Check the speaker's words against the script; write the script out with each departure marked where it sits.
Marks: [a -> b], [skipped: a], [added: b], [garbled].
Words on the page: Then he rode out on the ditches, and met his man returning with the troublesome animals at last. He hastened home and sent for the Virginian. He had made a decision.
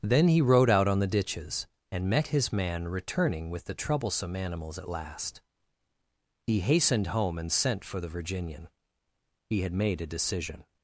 Then he rode out on the ditches, and met his man returning with the troublesome animals at last. He hastened home and sent for the Virginian. He had made a decision.